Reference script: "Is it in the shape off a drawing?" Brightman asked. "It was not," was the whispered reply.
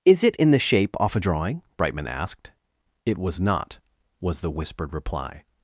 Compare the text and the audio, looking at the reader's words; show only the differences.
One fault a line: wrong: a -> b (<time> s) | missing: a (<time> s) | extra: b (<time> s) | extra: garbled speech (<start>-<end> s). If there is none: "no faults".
no faults